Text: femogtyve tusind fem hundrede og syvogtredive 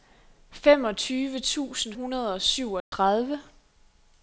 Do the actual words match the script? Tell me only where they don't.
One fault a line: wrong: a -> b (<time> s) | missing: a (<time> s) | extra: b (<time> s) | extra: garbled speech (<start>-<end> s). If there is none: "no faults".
missing: fem (1.9 s)